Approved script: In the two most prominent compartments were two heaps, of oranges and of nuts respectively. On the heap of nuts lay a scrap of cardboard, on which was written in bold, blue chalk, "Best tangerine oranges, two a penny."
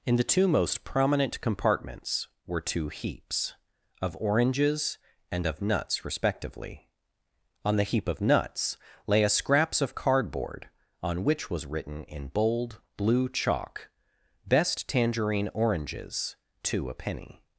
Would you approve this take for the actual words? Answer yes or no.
no